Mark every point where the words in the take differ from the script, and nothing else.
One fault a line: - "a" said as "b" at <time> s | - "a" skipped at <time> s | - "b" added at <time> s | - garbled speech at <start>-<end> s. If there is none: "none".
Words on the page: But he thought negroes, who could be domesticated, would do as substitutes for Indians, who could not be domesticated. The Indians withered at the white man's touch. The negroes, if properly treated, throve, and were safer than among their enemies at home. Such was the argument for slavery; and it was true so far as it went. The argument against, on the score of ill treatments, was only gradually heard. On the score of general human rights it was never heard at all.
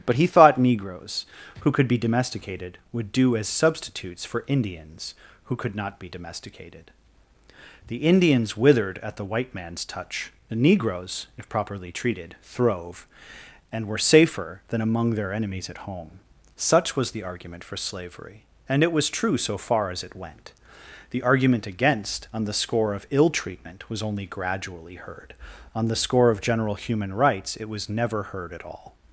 - "treatments" said as "treatment" at 23.3 s